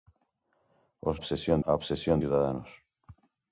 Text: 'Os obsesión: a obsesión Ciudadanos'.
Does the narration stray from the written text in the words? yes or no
no